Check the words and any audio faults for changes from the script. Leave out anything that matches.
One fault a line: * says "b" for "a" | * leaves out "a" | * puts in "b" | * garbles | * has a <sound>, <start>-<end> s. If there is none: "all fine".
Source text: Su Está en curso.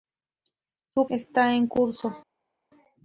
all fine